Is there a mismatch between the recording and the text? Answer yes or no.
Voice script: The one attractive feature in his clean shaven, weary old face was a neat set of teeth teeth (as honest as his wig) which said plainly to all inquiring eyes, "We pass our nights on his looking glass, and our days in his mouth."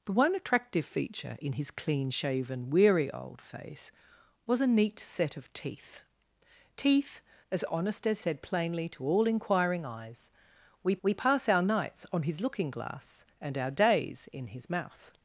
yes